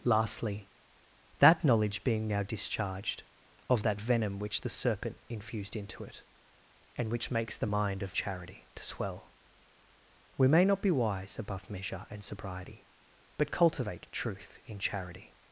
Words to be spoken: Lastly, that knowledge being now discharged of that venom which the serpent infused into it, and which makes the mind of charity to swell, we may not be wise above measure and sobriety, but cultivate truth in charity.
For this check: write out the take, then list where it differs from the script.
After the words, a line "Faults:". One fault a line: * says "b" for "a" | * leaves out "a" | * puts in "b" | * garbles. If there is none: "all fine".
Lastly, that knowledge being now discharged of that venom which the serpent infused into it, and which makes the mind of charity to swell, we may not be wise above measure and sobriety, but cultivate truth in charity.
Faults:
all fine